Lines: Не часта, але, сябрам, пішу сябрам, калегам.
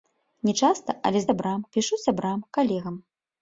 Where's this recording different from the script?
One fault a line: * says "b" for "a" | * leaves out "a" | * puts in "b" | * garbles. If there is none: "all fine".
all fine